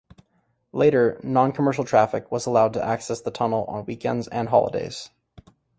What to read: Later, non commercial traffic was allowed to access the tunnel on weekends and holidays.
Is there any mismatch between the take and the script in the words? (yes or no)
no